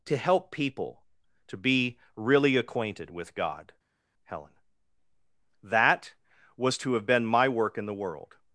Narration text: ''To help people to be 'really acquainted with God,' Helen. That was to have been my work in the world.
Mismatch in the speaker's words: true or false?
false